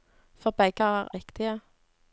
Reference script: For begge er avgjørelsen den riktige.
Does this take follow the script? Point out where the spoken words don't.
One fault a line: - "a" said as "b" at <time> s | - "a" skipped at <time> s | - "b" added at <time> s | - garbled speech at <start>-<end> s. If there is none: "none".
- "avgjørelsen den" skipped at 1.1 s